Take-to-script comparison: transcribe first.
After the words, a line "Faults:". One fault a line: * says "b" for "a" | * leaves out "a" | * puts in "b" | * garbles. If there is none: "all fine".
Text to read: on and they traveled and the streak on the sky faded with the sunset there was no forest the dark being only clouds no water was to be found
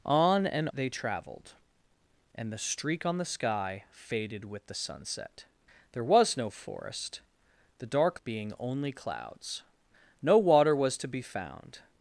on and they traveled and the streak on the sky faded with the sunset there was no forest the dark being only clouds no water was to be found
Faults:
all fine